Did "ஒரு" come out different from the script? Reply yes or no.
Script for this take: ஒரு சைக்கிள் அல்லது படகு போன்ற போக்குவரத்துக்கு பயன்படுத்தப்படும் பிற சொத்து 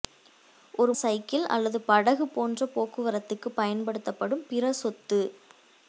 no